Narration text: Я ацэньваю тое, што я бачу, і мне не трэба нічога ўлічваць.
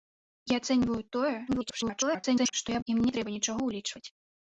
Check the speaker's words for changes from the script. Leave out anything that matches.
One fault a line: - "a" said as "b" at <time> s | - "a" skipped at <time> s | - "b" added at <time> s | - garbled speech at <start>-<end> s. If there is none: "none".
- garbled speech at 1.5-2.5 s
- "бачу" skipped at 2.8 s